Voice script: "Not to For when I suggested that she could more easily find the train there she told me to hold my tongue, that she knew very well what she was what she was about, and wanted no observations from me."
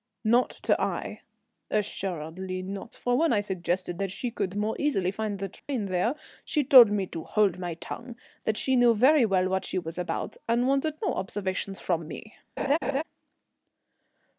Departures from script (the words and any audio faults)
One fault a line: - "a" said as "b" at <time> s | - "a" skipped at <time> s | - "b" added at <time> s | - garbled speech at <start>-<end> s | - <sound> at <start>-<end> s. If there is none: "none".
- "Aix Assuredly not" added at 0.8 s
- dropout at 5.6-5.7 s
- "what she was" skipped at 10.0 s
- laugh at 12.6-13.0 s